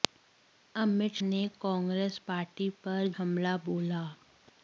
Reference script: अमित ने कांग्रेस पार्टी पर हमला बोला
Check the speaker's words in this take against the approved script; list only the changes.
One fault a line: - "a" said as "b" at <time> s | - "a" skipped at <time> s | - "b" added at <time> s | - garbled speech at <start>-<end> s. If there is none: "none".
none